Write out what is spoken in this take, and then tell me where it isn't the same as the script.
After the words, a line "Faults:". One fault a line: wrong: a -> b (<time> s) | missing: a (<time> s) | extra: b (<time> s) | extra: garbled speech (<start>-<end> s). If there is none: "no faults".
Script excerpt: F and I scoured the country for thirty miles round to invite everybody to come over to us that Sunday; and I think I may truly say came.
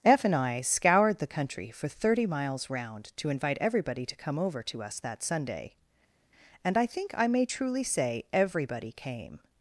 F and I scoured the country for thirty miles round to invite everybody to come over to us that Sunday; and I think I may truly say everybody came.
Faults:
extra: everybody (8.3 s)